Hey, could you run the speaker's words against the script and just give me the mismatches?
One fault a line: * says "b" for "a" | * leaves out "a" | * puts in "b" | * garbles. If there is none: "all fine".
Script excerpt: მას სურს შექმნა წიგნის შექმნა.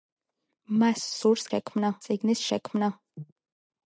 all fine